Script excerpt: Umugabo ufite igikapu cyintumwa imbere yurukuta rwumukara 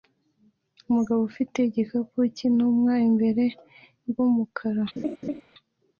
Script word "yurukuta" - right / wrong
wrong